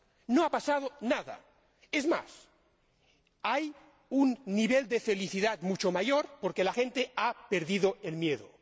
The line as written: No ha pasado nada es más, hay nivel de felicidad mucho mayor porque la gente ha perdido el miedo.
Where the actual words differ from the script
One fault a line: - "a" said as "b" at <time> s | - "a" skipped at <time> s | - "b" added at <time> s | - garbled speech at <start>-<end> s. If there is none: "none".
- "un" added at 4.1 s